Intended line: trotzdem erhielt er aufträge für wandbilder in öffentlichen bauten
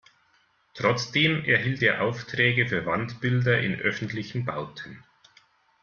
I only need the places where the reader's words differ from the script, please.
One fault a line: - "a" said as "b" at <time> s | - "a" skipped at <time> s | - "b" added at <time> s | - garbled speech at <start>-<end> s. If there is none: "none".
none